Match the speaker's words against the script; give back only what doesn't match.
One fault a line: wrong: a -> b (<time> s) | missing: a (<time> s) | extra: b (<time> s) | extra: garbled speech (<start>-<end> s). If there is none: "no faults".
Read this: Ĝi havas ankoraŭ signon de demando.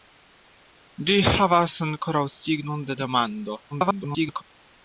extra: garbled speech (3.7-4.4 s)